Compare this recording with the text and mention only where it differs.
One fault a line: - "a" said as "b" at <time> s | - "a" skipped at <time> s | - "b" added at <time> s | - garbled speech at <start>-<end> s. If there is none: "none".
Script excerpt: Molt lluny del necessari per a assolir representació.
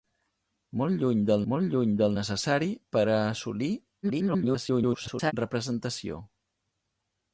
- "molt lluny del" added at 1.5 s
- garbled speech at 4.0-5.3 s